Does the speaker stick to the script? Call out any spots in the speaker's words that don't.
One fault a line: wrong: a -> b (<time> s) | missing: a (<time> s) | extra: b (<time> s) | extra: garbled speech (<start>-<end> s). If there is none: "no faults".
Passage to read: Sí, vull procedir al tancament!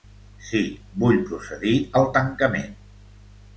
no faults